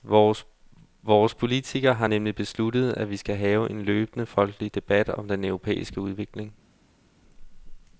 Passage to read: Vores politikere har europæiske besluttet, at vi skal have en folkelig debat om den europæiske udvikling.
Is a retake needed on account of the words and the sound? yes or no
yes